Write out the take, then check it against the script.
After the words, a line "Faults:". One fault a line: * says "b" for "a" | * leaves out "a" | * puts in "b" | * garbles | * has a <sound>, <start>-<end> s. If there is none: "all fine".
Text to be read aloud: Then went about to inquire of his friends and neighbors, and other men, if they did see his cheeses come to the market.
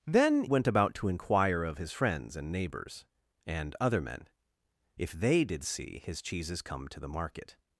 Then went about to inquire of his friends and neighbors, and other men, if they did see his cheeses come to the market.
Faults:
all fine